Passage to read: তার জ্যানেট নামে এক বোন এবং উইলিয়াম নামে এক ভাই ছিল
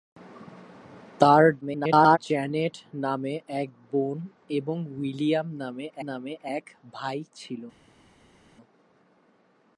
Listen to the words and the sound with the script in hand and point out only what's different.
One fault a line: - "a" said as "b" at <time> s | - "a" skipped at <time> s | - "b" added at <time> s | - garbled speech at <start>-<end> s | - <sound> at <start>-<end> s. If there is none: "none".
- garbled speech at 1.6-2.2 s
- "নামে" added at 6.0 s